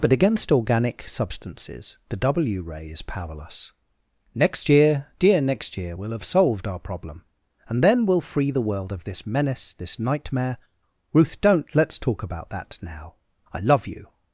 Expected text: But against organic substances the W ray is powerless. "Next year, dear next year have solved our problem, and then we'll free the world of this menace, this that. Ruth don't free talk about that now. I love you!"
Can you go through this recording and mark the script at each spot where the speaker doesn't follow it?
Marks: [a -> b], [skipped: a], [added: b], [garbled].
But against organic substances the W ray is powerless. "Next year, dear next year [added: we'll] have solved our problem, and then we'll free the world of this menace, this [that. -> nightmare] Ruth don't [free -> let's] talk about that now. I love you!"